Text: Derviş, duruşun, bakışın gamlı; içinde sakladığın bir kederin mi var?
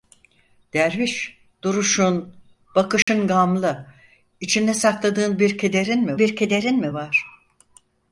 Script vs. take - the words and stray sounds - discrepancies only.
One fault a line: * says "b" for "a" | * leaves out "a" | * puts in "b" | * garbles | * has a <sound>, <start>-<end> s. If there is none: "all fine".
* has a dropout, 3.0-3.1 s
* puts in "bir kederin mi"